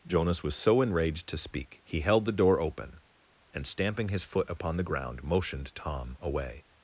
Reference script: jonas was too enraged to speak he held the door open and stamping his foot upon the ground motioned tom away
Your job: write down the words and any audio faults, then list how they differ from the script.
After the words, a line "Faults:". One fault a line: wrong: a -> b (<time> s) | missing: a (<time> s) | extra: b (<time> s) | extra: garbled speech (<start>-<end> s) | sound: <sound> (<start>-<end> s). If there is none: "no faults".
jonas was so enraged to speak he held the door open and stamping his foot upon the ground motioned tom away
Faults:
wrong: too -> so (0.6 s)